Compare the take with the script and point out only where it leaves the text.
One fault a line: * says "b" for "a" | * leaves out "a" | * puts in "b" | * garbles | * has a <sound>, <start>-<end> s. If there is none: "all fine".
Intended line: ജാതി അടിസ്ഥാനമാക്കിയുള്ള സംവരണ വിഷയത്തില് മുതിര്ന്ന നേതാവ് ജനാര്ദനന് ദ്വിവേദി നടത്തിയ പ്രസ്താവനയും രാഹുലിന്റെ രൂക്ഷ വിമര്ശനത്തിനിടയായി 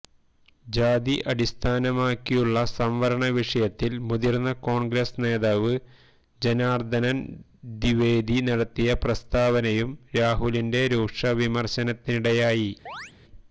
* puts in "കോണ്ഗ്രസ്"
* has a chirp, 12.9-13.1 s